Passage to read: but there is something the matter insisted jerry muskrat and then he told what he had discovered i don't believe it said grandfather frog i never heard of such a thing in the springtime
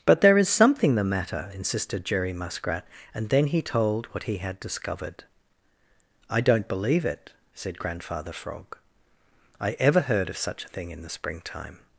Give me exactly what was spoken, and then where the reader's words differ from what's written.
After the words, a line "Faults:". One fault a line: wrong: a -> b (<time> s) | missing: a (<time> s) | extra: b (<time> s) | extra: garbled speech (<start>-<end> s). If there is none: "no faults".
but there is something the matter insisted jerry muskrat and then he told what he had discovered i don't believe it said grandfather frog i ever heard of such a thing in the springtime
Faults:
wrong: never -> ever (9.7 s)